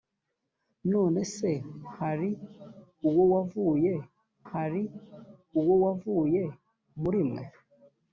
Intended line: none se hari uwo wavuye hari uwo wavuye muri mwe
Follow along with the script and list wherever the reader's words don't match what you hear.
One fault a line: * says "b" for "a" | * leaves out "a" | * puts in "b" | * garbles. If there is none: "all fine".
all fine